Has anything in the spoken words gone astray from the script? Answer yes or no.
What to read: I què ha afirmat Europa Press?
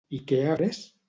yes